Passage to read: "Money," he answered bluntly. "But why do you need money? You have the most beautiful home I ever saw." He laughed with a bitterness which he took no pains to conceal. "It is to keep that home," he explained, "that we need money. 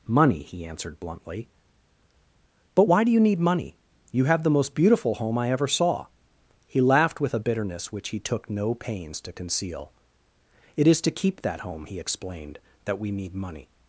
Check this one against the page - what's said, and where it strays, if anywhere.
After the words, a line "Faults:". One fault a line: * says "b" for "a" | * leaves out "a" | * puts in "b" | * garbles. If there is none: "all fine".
"Money," he answered bluntly. "But why do you need money? You have the most beautiful home I ever saw." He laughed with a bitterness which he took no pains to conceal. "It is to keep that home," he explained, "that we need money.
Faults:
all fine